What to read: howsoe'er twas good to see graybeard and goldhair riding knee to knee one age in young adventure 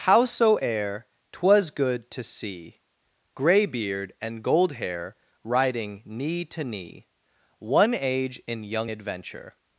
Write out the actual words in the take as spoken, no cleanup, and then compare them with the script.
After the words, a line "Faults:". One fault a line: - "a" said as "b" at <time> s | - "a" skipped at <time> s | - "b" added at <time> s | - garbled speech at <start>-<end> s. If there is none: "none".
howsoe'er twas good to see graybeard and goldhair riding knee to knee one age in young adventure
Faults:
none